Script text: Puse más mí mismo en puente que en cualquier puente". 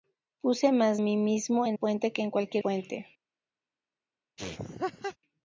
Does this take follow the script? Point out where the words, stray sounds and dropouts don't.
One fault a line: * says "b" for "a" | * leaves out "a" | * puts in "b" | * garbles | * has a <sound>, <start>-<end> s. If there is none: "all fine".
* has a laugh, 4.4-5.2 s